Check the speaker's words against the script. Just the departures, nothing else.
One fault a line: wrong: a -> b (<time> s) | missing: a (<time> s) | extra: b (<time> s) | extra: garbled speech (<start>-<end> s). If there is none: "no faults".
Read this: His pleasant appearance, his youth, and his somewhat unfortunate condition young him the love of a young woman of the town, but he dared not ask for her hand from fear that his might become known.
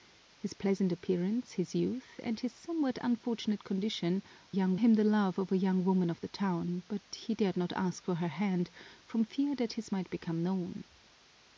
no faults